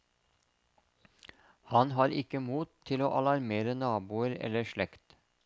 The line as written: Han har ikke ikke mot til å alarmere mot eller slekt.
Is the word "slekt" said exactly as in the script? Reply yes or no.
yes